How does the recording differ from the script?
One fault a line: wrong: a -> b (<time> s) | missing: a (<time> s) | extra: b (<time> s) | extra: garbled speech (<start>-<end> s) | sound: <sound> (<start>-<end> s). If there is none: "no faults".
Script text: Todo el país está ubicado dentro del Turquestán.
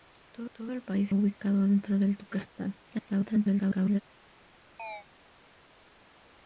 extra: todo (0.5 s)
missing: está (1.1 s)
extra: garbled speech (2.8-4.0 s)
sound: chirp (4.8-5.1 s)